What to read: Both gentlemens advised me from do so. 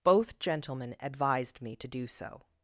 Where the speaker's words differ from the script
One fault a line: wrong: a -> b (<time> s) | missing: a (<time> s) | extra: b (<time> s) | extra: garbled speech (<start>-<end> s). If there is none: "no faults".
wrong: gentlemens -> gentlemen (0.4 s)
wrong: from -> to (1.8 s)